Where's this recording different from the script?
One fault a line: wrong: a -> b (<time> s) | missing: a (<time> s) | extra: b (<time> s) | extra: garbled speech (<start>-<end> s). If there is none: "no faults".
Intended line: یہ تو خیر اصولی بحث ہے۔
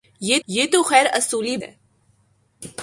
extra: یہ (0.5 s)
missing: بحث (1.6 s)